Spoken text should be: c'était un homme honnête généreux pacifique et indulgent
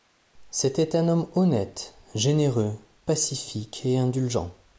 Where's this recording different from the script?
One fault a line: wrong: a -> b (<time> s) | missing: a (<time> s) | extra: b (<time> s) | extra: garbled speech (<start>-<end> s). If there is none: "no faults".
no faults